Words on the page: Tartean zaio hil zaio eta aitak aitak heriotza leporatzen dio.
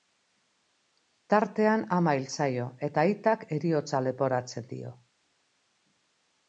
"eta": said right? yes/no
yes